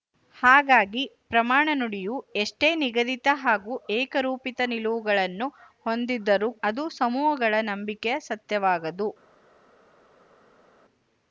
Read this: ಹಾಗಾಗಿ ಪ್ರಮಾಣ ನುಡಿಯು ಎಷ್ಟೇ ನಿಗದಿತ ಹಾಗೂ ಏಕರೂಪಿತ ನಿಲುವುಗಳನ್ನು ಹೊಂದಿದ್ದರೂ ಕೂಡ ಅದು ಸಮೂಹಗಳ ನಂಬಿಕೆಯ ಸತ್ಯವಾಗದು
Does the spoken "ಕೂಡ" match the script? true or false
false